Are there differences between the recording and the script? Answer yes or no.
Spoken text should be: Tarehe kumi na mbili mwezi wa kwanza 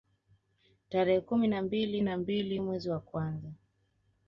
yes